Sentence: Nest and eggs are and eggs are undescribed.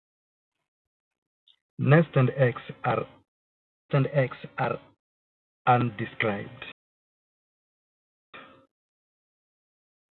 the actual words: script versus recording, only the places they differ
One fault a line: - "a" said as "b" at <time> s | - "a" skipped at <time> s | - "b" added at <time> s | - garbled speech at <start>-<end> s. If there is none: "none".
none